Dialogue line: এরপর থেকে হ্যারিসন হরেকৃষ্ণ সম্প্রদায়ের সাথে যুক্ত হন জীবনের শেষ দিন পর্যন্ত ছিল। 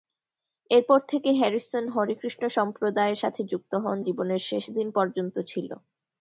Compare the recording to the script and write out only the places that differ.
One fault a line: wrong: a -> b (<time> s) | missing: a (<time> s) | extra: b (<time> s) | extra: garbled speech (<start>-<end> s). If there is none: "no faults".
no faults